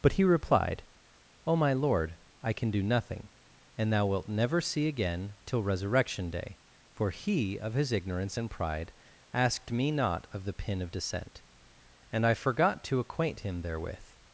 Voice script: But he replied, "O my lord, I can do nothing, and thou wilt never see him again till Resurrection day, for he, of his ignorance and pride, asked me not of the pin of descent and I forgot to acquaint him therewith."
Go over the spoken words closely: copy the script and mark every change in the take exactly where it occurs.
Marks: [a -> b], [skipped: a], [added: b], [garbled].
But he replied, "O my lord, I can do nothing, and thou wilt never see [skipped: him] again till Resurrection day, for he, of his ignorance and pride, asked me not of the pin of descent and I forgot to acquaint him therewith."